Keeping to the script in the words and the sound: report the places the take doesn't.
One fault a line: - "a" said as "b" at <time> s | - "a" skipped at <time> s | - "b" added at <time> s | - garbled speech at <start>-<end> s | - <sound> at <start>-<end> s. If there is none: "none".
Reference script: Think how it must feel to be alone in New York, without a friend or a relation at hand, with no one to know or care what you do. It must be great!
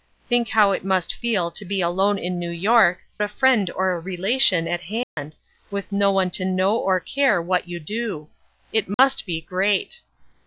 - "without" skipped at 3.0 s
- dropout at 5.0-5.2 s
- dropout at 8.9-9.0 s